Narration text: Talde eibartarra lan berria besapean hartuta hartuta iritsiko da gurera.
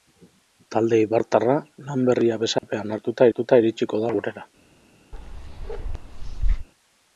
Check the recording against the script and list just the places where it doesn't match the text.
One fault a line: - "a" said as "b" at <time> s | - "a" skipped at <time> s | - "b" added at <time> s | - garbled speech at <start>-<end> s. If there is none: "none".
none